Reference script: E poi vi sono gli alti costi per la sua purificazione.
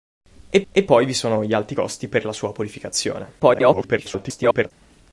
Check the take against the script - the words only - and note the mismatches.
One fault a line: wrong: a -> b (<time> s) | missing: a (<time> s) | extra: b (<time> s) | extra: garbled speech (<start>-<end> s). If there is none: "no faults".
extra: e (0.7 s)
extra: garbled speech (3.4-4.7 s)